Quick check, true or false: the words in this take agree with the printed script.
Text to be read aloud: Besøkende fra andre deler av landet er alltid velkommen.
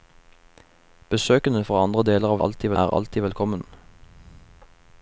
false